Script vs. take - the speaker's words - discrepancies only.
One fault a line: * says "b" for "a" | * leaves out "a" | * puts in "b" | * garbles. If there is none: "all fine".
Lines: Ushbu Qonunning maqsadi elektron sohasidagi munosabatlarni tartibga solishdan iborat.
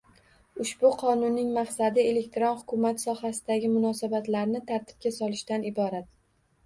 * puts in "hukumat"